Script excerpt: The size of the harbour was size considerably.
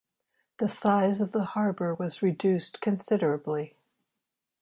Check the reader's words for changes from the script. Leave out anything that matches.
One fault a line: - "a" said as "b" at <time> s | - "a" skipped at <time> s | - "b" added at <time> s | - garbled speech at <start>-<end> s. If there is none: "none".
- "size" said as "reduced" at 2.2 s